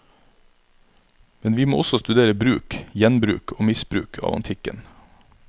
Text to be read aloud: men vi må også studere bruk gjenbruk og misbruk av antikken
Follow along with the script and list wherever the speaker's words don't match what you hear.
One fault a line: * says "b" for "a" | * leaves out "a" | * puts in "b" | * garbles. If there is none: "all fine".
all fine